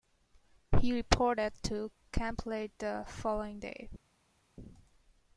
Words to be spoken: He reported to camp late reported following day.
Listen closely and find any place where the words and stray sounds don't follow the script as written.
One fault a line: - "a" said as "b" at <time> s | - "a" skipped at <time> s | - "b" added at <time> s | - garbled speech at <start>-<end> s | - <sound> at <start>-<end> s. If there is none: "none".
- "reported" said as "the" at 2.8 s